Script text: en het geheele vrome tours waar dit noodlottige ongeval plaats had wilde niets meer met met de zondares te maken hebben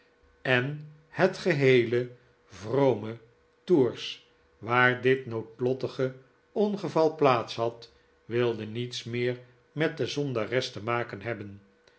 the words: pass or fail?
fail